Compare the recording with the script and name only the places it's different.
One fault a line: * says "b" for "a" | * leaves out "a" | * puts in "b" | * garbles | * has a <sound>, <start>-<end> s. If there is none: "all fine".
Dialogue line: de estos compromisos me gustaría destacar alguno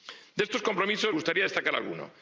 * leaves out "me"